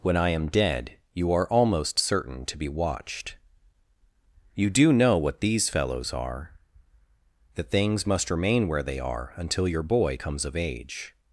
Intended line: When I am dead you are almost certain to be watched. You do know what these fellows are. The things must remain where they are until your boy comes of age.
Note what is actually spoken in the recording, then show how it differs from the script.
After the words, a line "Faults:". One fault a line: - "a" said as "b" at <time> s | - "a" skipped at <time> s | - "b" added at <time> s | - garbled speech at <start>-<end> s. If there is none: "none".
When I am dead you are almost certain to be watched. You do know what these fellows are. The things must remain where they are until your boy comes of age.
Faults:
none